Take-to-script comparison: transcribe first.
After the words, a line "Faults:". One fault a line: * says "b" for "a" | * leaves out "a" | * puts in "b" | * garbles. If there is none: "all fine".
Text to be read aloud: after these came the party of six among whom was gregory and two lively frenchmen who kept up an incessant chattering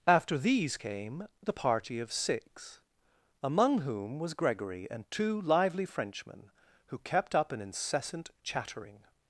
after these came the party of six among whom was gregory and two lively frenchmen who kept up an incessant chattering
Faults:
all fine